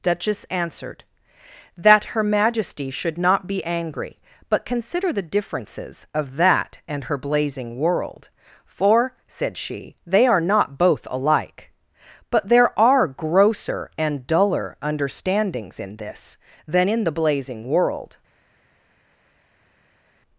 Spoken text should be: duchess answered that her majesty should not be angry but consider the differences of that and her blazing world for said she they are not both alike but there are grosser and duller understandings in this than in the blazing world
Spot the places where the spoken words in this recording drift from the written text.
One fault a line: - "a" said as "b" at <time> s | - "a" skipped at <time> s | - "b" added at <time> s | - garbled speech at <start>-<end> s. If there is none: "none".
none